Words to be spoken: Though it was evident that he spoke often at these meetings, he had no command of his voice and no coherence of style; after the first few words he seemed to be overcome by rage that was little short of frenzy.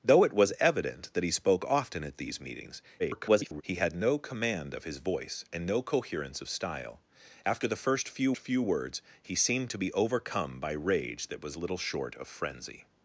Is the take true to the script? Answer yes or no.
no